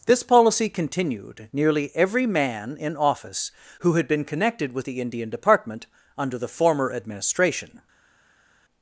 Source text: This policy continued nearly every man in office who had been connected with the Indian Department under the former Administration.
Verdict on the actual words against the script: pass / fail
pass